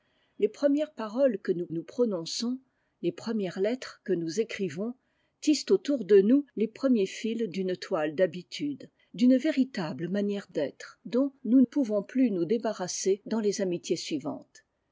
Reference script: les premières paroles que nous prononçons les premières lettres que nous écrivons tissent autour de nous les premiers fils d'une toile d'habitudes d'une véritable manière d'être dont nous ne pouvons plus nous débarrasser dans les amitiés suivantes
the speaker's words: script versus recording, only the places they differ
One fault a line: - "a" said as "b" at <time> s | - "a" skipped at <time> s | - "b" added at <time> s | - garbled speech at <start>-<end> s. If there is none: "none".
- "nous" added at 1.7 s
- "ne" skipped at 11.6 s